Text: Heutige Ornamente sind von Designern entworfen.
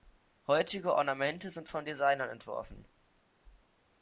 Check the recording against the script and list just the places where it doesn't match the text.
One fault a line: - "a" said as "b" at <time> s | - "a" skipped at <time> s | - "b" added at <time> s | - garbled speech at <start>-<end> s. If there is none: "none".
none